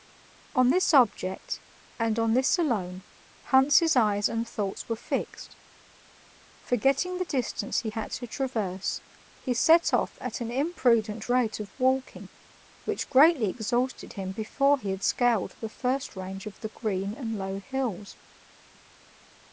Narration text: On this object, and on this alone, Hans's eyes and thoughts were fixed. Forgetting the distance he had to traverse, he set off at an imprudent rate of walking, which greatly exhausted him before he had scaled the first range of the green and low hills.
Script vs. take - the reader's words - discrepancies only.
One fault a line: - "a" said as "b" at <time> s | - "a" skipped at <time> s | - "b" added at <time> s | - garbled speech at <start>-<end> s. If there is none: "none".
none